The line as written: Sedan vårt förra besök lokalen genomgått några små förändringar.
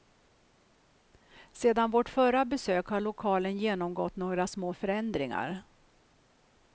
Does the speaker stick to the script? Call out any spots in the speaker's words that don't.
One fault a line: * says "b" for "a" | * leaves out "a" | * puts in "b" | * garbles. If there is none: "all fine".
* puts in "har"